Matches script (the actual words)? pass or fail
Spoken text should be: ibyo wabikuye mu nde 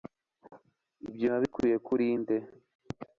fail